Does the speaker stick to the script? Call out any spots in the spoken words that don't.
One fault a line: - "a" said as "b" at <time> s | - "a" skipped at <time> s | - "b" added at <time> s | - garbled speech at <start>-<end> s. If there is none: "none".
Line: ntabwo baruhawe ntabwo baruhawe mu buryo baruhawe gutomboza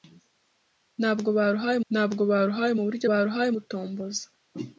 none